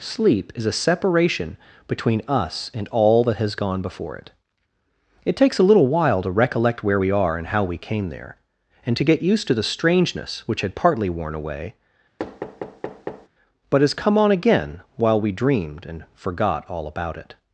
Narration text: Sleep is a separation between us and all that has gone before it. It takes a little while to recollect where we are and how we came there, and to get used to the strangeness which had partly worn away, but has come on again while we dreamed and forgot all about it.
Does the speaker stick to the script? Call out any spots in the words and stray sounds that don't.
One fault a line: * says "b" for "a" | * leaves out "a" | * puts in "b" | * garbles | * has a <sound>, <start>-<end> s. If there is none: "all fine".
* has a thud, 12.2-13.3 s